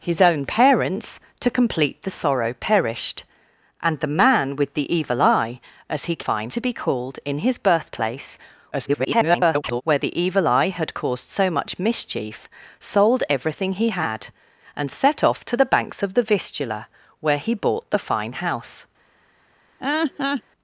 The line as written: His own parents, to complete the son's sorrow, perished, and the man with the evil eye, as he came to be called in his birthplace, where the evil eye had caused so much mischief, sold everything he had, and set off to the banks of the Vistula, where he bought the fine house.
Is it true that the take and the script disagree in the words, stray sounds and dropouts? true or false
true